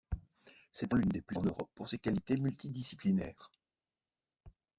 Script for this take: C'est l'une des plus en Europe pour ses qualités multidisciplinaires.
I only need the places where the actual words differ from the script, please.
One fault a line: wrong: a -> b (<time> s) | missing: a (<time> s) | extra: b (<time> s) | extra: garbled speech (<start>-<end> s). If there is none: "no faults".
no faults